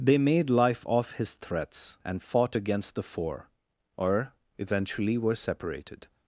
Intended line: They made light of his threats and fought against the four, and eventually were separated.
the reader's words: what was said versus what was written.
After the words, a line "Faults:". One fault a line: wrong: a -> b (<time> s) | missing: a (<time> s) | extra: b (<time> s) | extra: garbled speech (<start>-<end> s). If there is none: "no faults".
They made life of his threats and fought against the four, or eventually were separated.
Faults:
wrong: light -> life (0.5 s)
wrong: and -> or (4.0 s)